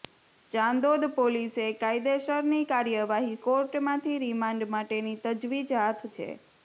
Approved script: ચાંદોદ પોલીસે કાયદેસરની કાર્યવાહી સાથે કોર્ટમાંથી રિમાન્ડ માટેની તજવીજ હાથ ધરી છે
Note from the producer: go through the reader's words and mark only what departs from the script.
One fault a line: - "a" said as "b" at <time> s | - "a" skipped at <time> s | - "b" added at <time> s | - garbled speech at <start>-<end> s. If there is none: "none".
- "સાથે" skipped at 3.4 s
- "ધરી" skipped at 6.1 s